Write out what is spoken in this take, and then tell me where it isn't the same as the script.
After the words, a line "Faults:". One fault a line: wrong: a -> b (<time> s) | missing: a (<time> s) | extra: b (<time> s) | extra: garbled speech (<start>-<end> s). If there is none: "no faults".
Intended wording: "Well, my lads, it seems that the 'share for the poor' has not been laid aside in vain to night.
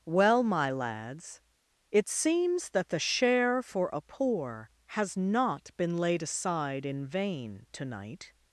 "Well, my lads, it seems that the 'share for a poor' has not been laid aside in vain to night.
Faults:
wrong: the -> a (3.9 s)